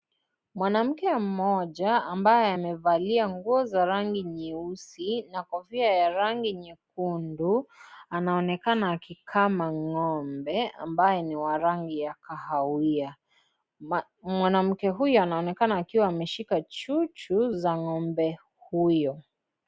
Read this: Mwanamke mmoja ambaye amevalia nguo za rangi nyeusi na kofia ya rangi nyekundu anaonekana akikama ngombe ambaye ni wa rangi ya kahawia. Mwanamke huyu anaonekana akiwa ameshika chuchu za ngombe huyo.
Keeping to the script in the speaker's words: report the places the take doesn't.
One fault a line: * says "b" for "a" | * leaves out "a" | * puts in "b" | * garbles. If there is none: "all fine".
all fine